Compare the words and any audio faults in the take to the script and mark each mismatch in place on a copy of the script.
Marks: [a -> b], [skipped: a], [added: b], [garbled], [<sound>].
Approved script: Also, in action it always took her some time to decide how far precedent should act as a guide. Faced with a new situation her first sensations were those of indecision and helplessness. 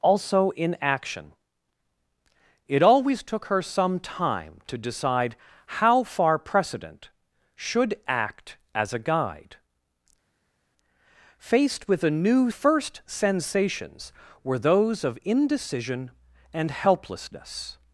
Also, in action it always took her some time to decide how far precedent should act as a guide. Faced with a new [skipped: situation her] first sensations were those of indecision and helplessness.